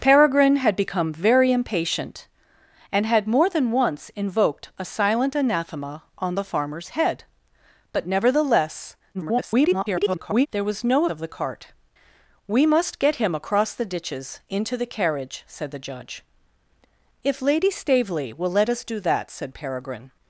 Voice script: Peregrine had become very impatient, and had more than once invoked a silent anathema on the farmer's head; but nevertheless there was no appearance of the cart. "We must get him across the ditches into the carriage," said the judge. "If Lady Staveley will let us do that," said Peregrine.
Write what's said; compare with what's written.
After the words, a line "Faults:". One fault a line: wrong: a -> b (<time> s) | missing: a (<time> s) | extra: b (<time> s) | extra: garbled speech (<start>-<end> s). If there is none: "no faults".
Peregrine had become very impatient, and had more than once invoked a silent anathema on the farmer's head; but nevertheless [garbled] there was no of the cart. "We must get him across the ditches into the carriage," said the judge. "If Lady Staveley will let us do that," said Peregrine.
Faults:
extra: garbled speech (9.1-10.5 s)
missing: appearance (11.1 s)